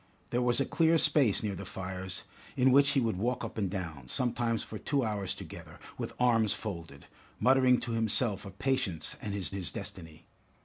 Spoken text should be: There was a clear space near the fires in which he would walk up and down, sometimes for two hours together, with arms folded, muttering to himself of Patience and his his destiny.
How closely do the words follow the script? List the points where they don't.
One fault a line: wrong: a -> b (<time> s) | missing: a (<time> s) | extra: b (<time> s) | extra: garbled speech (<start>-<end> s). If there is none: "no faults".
no faults